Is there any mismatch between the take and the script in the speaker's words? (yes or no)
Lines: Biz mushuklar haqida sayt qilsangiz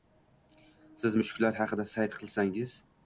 yes